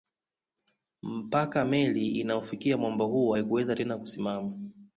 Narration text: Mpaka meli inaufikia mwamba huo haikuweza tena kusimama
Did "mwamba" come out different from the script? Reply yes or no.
no